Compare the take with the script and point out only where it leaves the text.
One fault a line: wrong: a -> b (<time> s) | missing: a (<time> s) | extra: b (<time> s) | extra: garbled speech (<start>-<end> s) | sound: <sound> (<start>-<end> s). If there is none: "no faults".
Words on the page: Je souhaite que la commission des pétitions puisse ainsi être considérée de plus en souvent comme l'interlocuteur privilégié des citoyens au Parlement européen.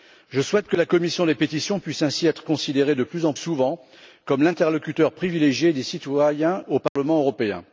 sound: dropout (6.9-7.0 s)